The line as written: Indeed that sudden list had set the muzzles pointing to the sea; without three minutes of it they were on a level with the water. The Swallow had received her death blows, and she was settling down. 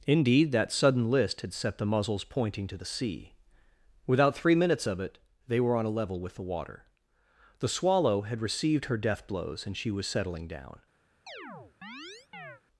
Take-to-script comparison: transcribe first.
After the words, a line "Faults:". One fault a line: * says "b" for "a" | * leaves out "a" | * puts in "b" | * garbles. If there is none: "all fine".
Indeed that sudden list had set the muzzles pointing to the sea; without three minutes of it they were on a level with the water. The Swallow had received her death blows, and she was settling down.
Faults:
all fine